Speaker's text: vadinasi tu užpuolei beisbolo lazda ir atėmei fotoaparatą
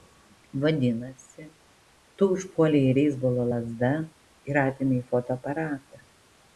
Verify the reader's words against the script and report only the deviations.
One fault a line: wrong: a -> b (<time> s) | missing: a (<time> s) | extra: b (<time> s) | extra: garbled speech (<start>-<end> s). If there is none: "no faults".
no faults